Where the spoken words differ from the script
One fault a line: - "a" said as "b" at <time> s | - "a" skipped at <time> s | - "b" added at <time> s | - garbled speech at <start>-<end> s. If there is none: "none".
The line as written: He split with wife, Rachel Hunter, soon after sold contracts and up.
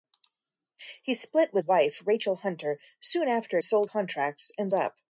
none